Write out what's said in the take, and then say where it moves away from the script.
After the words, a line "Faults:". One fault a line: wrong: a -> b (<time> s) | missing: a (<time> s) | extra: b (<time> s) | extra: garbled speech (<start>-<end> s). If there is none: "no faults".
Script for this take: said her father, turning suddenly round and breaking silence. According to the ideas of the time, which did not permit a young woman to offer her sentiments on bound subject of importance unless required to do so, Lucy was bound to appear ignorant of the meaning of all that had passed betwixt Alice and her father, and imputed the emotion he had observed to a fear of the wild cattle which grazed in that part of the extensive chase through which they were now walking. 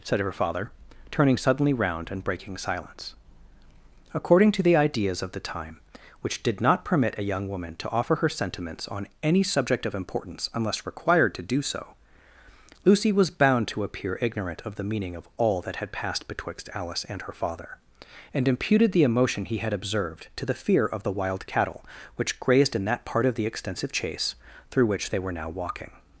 said her father, turning suddenly round and breaking silence. According to the ideas of the time, which did not permit a young woman to offer her sentiments on any subject of importance unless required to do so, Lucy was bound to appear ignorant of the meaning of all that had passed betwixt Alice and her father, and imputed the emotion he had observed to the fear of the wild cattle which grazed in that part of the extensive chase through which they were now walking.
Faults:
wrong: bound -> any (9.2 s)
wrong: a -> the (20.4 s)